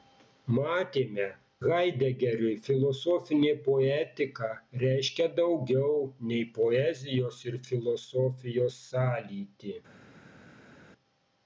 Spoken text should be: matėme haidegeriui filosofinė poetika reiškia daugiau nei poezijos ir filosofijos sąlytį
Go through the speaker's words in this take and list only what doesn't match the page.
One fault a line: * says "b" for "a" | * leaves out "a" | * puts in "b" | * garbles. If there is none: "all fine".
all fine